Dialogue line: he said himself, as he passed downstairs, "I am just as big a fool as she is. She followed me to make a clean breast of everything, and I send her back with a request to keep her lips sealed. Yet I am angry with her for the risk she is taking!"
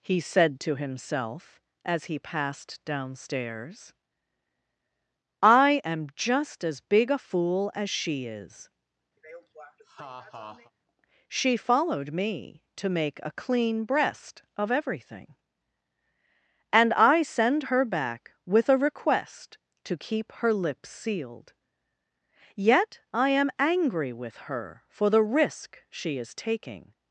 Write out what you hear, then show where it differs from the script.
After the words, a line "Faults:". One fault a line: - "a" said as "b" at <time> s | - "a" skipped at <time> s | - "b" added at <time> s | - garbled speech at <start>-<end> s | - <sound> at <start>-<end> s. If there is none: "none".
he said to himself, as he passed downstairs, "I am just as big a fool as she is. She followed me to make a clean breast of everything, and I send her back with a request to keep her lips sealed. Yet I am angry with her for the risk she is taking!"
Faults:
- "to" added at 0.6 s
- laugh at 9.2-10.7 s